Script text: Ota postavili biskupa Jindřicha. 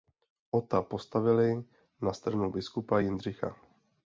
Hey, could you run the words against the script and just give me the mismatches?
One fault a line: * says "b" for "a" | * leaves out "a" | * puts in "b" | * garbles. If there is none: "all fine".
* puts in "na stranu"